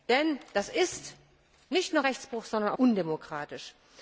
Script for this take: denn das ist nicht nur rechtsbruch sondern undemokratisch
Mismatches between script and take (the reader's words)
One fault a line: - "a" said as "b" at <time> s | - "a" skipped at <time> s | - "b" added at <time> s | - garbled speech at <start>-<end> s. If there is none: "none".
none